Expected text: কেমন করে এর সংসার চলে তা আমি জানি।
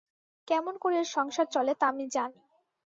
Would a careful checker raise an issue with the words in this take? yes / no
no